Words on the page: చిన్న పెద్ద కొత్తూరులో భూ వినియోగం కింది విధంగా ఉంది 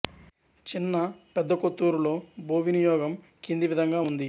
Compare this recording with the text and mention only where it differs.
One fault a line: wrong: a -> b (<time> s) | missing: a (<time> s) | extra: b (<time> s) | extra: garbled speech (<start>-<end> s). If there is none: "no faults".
no faults